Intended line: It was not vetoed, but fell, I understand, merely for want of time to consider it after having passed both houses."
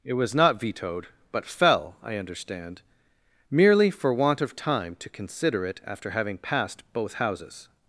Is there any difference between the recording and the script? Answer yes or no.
no